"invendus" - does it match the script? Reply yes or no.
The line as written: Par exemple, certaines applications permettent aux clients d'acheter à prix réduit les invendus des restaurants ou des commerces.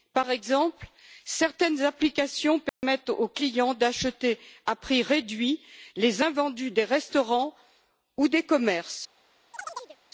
yes